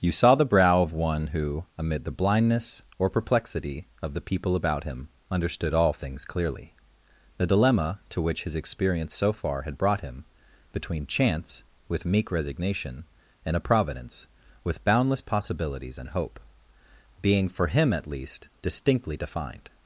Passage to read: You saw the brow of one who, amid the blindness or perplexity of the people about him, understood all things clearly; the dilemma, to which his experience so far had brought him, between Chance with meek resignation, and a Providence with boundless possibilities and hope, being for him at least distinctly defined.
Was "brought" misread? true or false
false